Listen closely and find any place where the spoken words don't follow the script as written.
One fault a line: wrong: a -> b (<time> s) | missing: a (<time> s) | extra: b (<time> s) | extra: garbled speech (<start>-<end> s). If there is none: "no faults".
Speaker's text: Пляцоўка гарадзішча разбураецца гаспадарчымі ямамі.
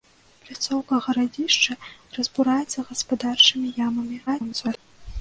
extra: garbled speech (4.3-4.8 s)